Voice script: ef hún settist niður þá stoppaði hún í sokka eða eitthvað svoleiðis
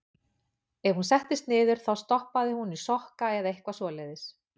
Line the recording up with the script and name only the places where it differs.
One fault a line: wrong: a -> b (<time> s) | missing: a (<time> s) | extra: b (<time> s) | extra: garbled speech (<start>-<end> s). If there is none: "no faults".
no faults